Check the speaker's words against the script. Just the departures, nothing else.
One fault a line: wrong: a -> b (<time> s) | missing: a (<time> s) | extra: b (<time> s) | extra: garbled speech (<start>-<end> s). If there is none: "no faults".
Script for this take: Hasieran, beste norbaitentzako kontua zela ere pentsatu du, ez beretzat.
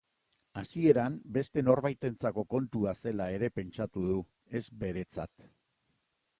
no faults